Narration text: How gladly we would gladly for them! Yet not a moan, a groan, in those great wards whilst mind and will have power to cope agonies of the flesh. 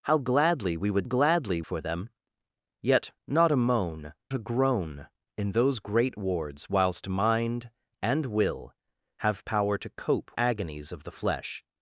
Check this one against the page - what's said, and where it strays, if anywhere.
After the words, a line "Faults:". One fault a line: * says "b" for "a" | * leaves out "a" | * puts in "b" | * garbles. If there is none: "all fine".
How gladly we would gladly for them! Yet not a moan, a groan, in those great wards whilst mind and will have power to cope agonies of the flesh.
Faults:
all fine